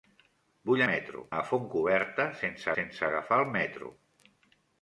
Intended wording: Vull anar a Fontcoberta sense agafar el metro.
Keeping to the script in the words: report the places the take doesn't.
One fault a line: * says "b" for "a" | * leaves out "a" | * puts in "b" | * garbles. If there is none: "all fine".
* says "metro" for "anar"
* puts in "sense"